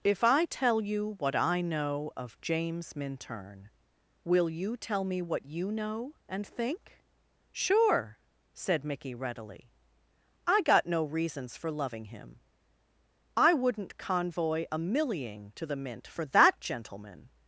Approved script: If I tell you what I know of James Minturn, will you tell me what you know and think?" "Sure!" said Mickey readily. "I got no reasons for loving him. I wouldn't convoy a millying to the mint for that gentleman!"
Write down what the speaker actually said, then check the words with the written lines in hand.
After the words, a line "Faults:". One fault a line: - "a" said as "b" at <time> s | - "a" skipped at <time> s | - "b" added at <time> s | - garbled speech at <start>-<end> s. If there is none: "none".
If I tell you what I know of James Minturn, will you tell me what you know and think?" "Sure!" said Mickey readily. "I got no reasons for loving him. I wouldn't convoy a millying to the mint for that gentleman!"
Faults:
none